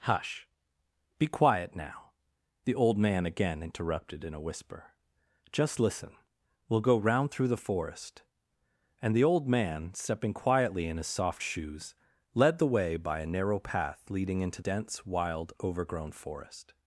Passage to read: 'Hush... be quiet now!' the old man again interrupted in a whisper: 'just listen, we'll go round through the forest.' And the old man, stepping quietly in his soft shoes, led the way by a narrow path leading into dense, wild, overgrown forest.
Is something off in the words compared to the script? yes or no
no